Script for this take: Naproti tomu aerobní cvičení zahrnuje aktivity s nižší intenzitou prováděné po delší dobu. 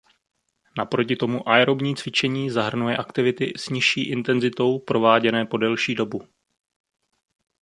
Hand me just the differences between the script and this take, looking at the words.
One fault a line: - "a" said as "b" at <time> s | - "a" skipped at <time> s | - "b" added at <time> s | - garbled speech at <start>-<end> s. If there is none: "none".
none